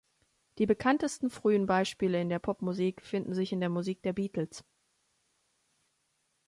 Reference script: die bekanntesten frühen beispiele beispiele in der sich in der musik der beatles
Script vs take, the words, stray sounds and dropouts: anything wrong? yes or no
yes